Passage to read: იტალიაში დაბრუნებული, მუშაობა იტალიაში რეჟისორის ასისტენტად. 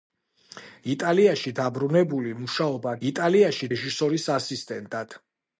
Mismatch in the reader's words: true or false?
false